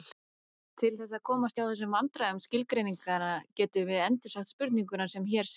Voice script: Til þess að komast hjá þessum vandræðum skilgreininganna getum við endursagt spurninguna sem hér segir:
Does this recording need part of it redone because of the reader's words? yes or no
no